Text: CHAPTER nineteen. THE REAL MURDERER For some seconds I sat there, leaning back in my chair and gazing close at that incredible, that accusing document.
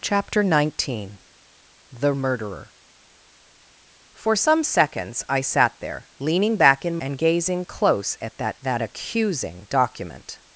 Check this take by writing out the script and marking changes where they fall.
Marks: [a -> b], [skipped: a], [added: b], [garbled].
CHAPTER nineteen. THE [skipped: REAL] MURDERER For some seconds I sat there, leaning back in [skipped: my chair] and gazing close at that [skipped: incredible,] that accusing document.